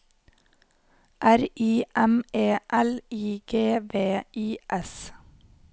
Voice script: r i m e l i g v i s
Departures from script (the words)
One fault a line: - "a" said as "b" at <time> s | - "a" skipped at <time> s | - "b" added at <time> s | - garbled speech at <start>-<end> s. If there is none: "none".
none